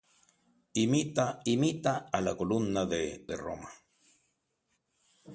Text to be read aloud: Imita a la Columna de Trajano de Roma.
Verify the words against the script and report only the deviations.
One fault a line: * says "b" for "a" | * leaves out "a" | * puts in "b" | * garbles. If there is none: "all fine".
* puts in "imita"
* leaves out "Trajano"